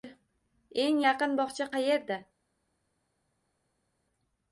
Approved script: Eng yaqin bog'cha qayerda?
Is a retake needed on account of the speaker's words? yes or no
no